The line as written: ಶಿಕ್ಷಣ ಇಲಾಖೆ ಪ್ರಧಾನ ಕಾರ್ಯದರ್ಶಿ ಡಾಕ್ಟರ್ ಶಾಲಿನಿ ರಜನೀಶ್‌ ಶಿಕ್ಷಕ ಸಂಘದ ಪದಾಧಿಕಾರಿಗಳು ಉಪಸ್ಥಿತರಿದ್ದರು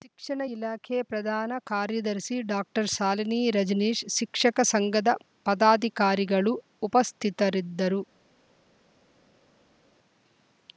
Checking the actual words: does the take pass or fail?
pass